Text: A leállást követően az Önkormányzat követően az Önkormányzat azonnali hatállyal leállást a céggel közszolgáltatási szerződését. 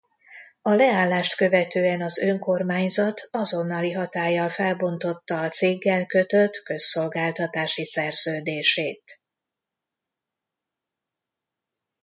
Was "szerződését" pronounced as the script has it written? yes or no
yes